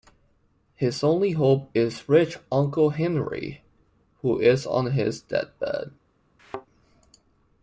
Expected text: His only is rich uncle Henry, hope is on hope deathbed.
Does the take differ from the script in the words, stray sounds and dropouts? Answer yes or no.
yes